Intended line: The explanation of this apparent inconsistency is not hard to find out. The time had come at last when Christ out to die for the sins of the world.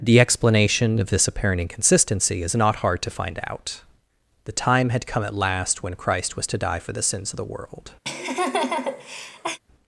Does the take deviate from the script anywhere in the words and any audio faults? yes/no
yes